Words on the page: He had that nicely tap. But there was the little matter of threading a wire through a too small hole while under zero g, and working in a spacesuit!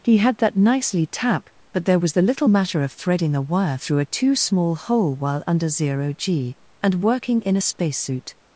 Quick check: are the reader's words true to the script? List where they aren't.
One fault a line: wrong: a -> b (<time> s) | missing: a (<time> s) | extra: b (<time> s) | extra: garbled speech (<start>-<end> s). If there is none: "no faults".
no faults